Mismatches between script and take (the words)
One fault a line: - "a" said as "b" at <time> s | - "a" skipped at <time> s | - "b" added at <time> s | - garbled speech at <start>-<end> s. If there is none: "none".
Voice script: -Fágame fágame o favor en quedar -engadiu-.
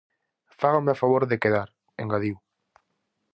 - "fágame" skipped at 0.9 s
- "en" said as "de" at 1.3 s